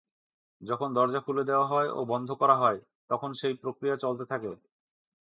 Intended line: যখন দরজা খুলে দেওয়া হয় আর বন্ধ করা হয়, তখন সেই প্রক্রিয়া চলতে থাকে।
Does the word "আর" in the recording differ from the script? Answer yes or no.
yes